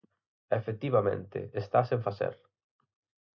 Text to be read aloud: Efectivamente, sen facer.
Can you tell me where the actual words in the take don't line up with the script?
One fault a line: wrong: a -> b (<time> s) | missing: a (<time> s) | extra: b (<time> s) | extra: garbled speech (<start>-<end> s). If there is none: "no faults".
extra: está (1.5 s)